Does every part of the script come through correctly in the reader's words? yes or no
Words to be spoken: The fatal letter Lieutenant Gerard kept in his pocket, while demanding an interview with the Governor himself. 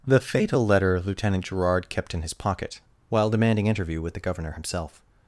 no